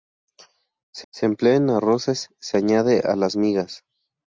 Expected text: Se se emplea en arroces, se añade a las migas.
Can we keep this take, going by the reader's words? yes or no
yes